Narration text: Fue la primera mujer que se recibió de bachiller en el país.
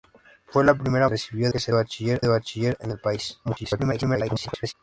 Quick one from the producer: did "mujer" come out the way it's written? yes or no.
no